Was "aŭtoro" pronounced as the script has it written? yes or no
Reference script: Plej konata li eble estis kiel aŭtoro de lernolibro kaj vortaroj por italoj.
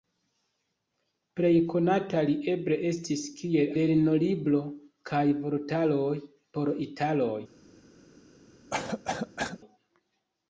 no